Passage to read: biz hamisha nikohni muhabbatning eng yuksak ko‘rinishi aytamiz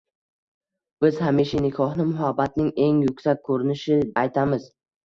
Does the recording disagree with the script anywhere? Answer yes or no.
no